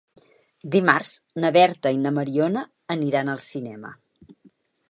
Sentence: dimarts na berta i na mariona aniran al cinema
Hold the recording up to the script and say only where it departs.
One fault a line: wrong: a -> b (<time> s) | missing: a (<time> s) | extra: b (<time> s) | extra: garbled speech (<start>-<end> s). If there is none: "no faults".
no faults